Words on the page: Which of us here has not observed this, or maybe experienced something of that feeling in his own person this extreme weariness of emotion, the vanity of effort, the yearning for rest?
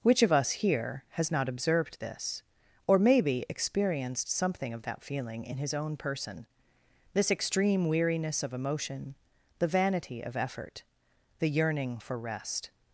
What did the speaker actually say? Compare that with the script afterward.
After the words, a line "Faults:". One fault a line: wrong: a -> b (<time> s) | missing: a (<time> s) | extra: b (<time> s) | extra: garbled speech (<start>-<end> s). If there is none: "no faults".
Which of us here has not observed this, or maybe experienced something of that feeling in his own person this extreme weariness of emotion, the vanity of effort, the yearning for rest?
Faults:
no faults